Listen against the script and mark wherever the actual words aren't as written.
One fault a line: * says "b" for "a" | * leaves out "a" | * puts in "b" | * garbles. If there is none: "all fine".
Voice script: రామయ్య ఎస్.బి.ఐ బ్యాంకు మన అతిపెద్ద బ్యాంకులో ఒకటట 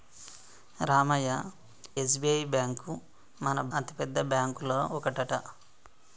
all fine